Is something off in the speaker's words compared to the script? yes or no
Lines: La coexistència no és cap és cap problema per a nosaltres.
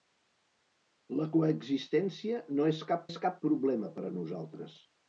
no